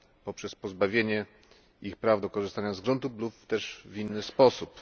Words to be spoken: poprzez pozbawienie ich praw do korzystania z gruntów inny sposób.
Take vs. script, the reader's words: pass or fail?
fail